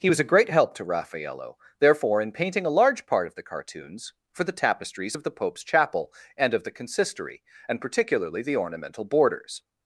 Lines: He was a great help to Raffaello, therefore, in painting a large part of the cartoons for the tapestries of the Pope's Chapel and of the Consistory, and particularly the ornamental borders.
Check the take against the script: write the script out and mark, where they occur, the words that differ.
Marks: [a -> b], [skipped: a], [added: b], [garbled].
He was a great help to Raffaello, therefore, in painting a large part of the cartoons for the tapestries of the Pope's Chapel and of the Consistory, and particularly the ornamental borders.